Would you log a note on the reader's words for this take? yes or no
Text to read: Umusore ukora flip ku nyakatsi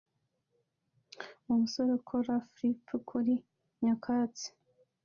yes